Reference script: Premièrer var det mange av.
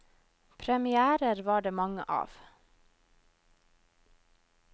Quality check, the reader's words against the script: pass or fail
pass